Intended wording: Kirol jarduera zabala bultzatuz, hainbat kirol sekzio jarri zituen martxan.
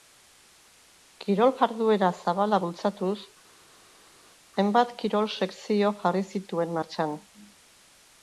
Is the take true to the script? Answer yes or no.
yes